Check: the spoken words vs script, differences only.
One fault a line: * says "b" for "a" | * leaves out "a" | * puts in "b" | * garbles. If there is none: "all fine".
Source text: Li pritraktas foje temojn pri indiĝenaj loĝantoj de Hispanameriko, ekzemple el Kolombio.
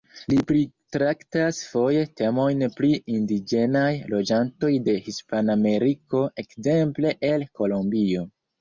all fine